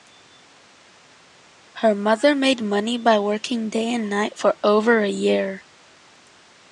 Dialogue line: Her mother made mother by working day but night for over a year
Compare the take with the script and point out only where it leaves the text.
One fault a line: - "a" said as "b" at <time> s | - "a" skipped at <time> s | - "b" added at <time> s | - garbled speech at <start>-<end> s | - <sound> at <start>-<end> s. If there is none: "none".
- "mother" said as "money" at 2.6 s
- "but" said as "and" at 3.9 s